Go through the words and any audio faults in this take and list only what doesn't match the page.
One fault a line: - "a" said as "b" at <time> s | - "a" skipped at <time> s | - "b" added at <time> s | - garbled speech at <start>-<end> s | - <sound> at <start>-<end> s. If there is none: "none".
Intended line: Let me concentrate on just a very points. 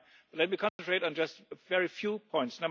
- dropout at 0.7-0.8 s
- "few" added at 1.9 s